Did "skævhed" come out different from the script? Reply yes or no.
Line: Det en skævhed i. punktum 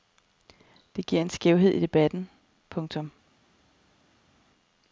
no